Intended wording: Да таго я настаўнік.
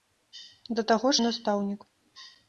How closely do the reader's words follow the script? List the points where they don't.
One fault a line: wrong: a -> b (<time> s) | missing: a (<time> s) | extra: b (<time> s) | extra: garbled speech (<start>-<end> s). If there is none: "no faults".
no faults